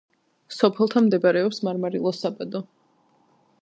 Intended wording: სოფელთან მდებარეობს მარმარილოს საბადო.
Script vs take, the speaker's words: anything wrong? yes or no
no